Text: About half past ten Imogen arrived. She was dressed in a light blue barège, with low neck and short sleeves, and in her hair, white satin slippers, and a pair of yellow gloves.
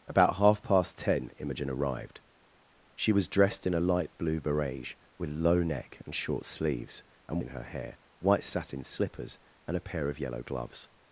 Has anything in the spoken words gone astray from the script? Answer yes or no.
no